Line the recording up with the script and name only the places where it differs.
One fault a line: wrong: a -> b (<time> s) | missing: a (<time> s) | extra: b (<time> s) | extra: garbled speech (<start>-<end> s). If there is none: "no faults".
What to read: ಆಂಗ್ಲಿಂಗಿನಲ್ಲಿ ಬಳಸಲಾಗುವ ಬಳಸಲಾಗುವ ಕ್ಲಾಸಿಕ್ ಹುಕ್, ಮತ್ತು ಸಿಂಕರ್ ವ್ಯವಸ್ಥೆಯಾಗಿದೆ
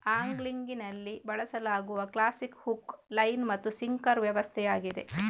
missing: ಬಳಸಲಾಗುವ (2.0 s)
extra: ಲೈನ್ (3.1 s)